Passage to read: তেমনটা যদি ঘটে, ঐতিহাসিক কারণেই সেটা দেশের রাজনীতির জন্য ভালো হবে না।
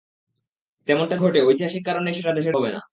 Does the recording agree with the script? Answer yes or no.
no